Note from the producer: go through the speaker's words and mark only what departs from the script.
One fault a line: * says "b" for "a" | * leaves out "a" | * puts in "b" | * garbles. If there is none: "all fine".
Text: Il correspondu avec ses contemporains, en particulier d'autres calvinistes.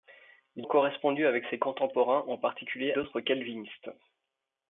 all fine